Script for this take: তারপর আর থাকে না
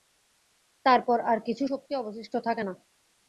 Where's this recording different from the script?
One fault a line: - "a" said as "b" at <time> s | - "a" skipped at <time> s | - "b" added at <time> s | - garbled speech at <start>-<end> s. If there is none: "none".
- "কিছু শক্তি অবশিষ্ট" added at 1.5 s